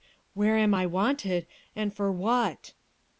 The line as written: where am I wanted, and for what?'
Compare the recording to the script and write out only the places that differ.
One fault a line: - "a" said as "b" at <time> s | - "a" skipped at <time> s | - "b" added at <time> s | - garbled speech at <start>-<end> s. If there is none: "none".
none